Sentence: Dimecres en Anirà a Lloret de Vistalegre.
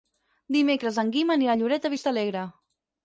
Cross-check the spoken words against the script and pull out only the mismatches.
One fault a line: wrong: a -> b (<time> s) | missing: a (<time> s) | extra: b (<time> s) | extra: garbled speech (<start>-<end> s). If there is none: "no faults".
extra: Guim (1.2 s)